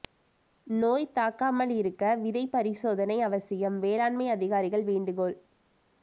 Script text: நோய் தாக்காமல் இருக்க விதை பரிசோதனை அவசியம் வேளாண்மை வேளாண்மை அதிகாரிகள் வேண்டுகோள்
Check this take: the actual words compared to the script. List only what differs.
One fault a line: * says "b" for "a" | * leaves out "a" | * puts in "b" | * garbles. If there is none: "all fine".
* leaves out "வேளாண்மை"